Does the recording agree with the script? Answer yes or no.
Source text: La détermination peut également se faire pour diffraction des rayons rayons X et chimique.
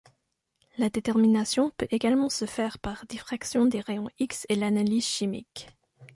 no